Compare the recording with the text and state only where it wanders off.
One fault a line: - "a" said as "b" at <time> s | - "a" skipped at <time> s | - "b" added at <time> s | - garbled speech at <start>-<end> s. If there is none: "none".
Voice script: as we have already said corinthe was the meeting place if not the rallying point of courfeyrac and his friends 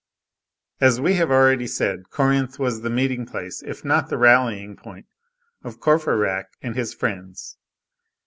none